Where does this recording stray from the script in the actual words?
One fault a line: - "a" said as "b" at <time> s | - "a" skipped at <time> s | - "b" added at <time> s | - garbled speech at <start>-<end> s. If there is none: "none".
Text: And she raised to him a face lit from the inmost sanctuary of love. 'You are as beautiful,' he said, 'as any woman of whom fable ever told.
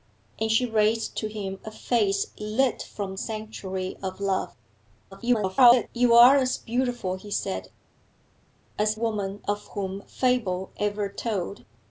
- "the inmost" skipped at 3.2 s
- garbled speech at 5.1-5.9 s
- "any" skipped at 9.0 s